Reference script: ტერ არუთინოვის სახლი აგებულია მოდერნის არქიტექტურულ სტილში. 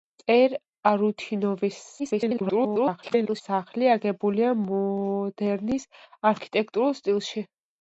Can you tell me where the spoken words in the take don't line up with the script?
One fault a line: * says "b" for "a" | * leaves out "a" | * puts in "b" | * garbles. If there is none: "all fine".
* garbles